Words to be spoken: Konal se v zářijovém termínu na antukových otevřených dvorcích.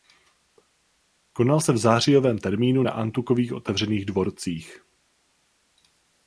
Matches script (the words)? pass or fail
pass